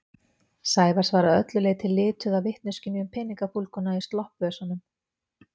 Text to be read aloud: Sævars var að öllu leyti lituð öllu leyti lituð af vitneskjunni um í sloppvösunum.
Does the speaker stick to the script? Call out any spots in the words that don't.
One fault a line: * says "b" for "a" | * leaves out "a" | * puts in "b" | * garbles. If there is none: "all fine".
* leaves out "öllu leyti lituð"
* puts in "peningafúlguna"